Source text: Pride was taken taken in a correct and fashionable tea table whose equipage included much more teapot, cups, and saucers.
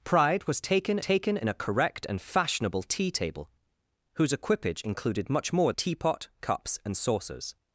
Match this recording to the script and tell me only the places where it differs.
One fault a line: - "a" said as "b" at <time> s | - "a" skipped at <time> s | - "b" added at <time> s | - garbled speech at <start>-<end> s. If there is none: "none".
none